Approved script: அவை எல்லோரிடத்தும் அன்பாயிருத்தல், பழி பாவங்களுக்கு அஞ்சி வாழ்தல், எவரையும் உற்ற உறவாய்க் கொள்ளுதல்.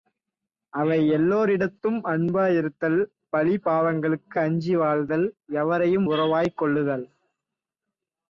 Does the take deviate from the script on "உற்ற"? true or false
true